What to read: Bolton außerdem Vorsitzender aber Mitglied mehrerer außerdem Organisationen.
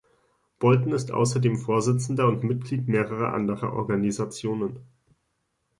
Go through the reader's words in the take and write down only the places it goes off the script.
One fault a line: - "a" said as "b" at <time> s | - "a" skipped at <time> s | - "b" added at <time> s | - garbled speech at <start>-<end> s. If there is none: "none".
- "ist" added at 0.9 s
- "aber" said as "und" at 2.3 s
- "außerdem" said as "anderer" at 3.4 s